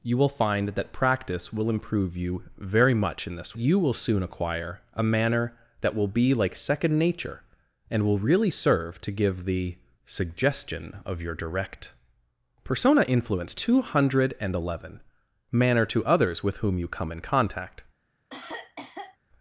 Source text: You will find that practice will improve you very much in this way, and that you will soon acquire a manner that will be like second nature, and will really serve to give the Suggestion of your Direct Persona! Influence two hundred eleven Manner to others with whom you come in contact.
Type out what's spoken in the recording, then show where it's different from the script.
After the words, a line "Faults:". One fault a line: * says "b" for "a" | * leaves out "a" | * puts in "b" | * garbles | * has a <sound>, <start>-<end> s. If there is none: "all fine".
You will find that practice will improve you very much in this you will soon acquire a manner that will be like second nature, and will really serve to give the Suggestion of your Direct Persona! Influence two hundred eleven Manner to others with whom you come in contact.
Faults:
* leaves out "way and that"
* has a cough, 18.3-19.2 s